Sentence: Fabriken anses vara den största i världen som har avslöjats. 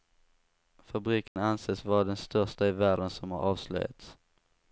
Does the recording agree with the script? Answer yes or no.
yes